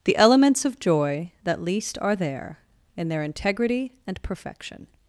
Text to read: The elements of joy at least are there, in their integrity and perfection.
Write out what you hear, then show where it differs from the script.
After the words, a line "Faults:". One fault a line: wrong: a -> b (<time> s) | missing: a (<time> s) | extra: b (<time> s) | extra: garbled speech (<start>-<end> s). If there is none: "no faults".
The elements of joy that least are there, in their integrity and perfection.
Faults:
wrong: at -> that (1.4 s)